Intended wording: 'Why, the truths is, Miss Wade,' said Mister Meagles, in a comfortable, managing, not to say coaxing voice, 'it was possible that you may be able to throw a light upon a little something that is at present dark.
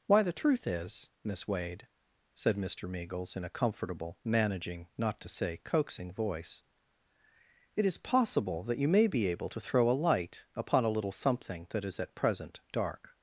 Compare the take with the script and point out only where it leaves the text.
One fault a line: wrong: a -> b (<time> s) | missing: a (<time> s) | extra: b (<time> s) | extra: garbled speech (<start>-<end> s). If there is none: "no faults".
wrong: truths -> truth (0.3 s)
wrong: was -> is (7.8 s)